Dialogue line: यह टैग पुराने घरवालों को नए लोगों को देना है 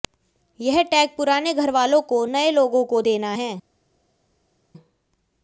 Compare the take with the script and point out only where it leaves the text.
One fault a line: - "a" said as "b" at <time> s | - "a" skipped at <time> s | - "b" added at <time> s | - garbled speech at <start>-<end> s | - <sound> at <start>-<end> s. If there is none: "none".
none